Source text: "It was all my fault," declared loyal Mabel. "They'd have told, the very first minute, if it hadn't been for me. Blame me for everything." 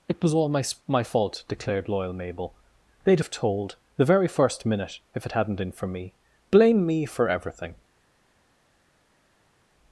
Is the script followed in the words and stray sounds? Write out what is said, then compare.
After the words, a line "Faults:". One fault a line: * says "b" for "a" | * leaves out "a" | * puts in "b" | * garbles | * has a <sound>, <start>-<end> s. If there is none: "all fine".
"It was all my my fault," declared loyal Mabel. "They'd have told, the very first minute, if it hadn't been for me. Blame me for everything."
Faults:
* puts in "my"